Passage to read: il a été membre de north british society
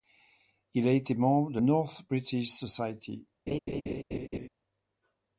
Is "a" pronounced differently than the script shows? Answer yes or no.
no